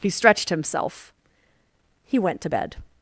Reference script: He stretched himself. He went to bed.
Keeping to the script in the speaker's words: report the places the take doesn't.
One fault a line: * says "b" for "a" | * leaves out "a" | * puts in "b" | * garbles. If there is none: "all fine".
all fine